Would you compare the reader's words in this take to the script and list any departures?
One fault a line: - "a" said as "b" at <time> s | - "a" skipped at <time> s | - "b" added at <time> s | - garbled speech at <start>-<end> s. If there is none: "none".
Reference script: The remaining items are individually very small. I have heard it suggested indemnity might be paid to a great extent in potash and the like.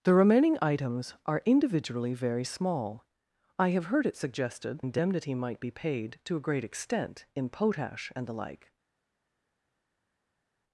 none